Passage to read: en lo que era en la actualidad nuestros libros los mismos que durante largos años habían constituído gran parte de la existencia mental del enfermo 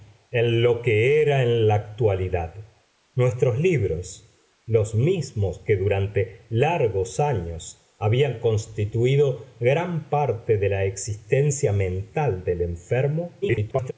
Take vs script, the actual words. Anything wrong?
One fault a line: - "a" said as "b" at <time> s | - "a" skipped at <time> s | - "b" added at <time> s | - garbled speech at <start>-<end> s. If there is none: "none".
- garbled speech at 13.4-13.9 s